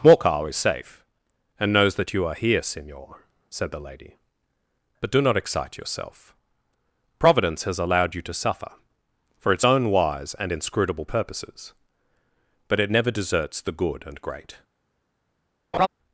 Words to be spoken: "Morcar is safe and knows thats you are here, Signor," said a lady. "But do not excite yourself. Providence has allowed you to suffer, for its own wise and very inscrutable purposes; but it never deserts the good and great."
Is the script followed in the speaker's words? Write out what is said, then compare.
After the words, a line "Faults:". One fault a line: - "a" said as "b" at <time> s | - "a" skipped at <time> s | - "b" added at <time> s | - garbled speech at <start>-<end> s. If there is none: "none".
"Morcar is safe and knows that you are here, Signor," said the lady. "But do not excite yourself. Providence has allowed you to suffer, for its own wise and inscrutable purposes; but it never deserts the good and great."
Faults:
- "thats" said as "that" at 1.9 s
- "a" said as "the" at 3.7 s
- "very" skipped at 10.5 s